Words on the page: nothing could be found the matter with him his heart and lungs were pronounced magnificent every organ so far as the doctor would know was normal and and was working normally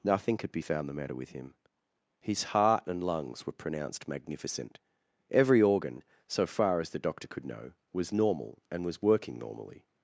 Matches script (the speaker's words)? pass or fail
fail